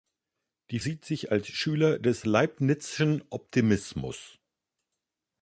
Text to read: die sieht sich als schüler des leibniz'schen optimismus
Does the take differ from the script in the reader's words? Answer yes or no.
no